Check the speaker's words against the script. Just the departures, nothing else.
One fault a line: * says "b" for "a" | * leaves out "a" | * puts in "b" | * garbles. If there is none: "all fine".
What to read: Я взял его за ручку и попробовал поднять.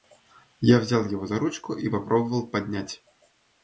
all fine